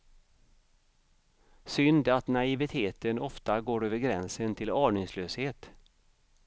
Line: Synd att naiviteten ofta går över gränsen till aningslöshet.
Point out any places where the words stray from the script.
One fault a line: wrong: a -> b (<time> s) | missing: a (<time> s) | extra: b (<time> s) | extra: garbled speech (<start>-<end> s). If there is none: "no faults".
no faults